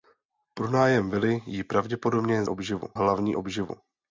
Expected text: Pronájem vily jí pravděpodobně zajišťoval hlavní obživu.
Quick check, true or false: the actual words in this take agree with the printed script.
false